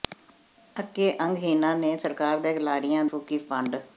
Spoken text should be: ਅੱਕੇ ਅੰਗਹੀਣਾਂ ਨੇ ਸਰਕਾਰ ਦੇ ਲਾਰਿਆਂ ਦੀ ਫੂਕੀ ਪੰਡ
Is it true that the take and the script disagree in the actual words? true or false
true